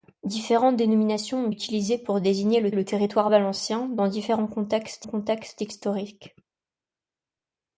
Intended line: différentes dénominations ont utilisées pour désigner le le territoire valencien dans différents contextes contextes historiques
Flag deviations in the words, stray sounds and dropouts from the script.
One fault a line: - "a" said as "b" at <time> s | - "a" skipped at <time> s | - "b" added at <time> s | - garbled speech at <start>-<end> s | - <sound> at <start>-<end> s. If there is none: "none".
none